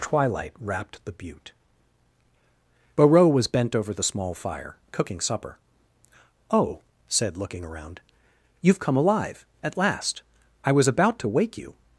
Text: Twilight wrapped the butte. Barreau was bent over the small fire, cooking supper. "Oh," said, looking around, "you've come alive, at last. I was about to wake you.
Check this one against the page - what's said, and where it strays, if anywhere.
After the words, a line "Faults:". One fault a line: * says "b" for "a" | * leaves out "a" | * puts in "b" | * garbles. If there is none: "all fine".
Twilight wrapped the butte. Barreau was bent over the small fire, cooking supper. "Oh," said, looking around, "you've come alive, at last. I was about to wake you.
Faults:
all fine